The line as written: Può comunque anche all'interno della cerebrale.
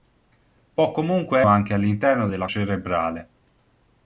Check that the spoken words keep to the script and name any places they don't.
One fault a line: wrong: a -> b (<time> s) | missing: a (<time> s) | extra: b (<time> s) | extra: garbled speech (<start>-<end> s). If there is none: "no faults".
no faults